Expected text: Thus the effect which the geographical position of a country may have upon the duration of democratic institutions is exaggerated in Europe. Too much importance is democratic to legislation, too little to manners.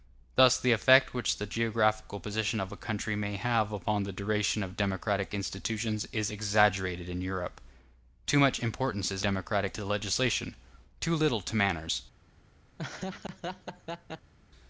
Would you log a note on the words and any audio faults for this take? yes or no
yes